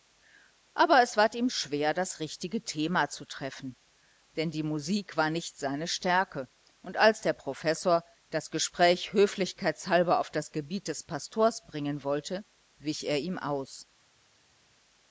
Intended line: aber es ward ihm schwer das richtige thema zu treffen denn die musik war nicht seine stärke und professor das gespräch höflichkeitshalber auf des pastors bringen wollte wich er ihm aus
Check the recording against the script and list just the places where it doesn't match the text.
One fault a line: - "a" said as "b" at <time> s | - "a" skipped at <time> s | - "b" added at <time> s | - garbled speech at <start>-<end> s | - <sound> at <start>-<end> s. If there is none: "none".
- "als der" added at 7.0 s
- "das gebiet" added at 10.3 s